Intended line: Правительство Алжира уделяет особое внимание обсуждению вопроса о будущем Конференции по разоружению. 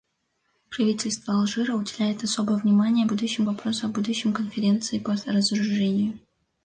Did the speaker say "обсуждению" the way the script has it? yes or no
no